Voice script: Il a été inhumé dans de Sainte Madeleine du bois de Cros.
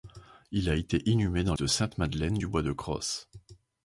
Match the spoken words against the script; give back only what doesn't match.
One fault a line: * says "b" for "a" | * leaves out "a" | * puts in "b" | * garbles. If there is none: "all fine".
all fine